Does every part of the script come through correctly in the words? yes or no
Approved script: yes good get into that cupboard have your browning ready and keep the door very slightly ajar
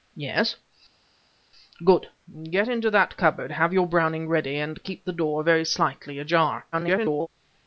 no